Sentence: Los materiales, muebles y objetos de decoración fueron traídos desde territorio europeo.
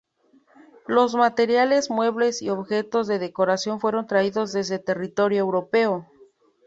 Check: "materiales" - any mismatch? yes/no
no